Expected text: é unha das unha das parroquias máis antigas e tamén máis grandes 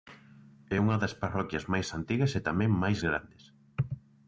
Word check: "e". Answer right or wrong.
right